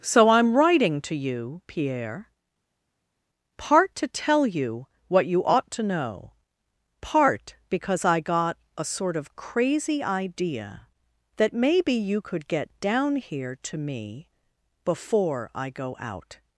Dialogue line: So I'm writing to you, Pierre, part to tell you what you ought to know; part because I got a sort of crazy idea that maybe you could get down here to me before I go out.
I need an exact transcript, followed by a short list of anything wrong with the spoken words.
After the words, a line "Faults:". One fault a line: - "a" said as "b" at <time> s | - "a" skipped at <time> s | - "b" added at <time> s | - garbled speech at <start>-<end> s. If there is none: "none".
So I'm writing to you, Pierre, part to tell you what you ought to know; part because I got a sort of crazy idea that maybe you could get down here to me before I go out.
Faults:
none